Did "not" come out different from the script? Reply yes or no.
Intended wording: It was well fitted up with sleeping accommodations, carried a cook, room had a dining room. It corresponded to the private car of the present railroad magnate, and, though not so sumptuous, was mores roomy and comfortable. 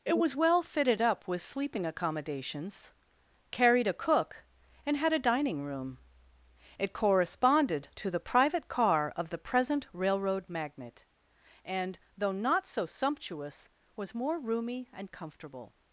no